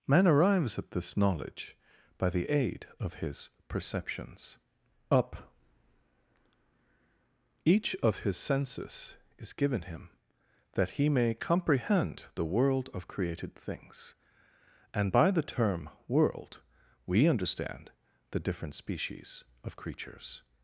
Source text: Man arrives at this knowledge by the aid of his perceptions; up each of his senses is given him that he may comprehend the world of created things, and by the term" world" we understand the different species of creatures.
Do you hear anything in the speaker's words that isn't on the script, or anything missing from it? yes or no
no